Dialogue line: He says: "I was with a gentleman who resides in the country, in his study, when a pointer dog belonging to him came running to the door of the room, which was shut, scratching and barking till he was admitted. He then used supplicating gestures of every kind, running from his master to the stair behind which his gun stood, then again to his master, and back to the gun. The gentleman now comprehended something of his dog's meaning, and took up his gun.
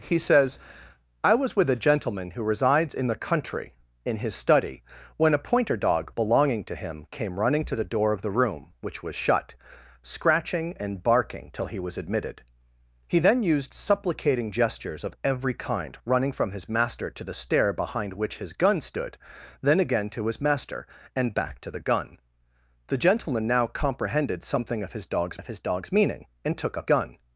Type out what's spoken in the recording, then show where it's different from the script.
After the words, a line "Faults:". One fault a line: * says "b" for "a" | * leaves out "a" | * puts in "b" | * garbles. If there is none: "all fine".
He says: "I was with a gentleman who resides in the country, in his study, when a pointer dog belonging to him came running to the door of the room, which was shut, scratching and barking till he was admitted. He then used supplicating gestures of every kind, running from his master to the stair behind which his gun stood, then again to his master, and back to the gun. The gentleman now comprehended something of his dog's of his dog's meaning, and took up gun.
Faults:
* puts in "of his dog's"
* leaves out "his"